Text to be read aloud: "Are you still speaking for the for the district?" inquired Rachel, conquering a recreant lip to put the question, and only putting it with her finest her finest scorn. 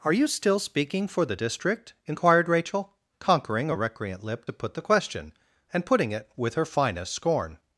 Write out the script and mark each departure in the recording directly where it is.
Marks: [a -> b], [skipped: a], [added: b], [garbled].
"Are you still speaking for the [skipped: for the] district?" inquired Rachel, conquering a recreant lip to put the question, and [skipped: only] putting it with her finest [skipped: her finest] scorn.